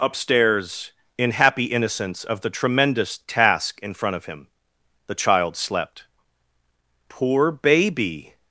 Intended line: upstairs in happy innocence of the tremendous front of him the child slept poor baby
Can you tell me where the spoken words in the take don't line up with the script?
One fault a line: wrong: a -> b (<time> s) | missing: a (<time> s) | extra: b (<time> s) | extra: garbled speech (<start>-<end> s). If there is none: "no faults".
extra: task in (3.3 s)